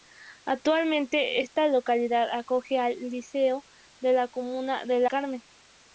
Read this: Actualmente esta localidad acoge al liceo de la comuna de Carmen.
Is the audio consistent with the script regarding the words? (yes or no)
yes